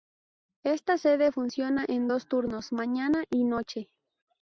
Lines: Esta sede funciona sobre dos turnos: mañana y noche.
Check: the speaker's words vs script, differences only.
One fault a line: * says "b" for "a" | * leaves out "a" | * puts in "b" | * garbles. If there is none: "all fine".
* says "en" for "sobre"